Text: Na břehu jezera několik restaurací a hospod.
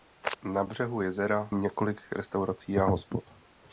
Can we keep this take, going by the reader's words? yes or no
yes